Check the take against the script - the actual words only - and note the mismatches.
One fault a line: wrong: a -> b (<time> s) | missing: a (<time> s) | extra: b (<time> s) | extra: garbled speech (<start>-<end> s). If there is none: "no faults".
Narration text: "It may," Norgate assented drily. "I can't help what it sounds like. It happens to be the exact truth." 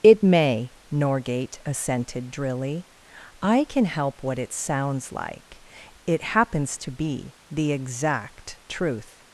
wrong: can't -> can (3.6 s)